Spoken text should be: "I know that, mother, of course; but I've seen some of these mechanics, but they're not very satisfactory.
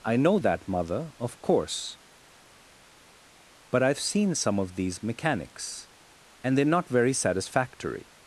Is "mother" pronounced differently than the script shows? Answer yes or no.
no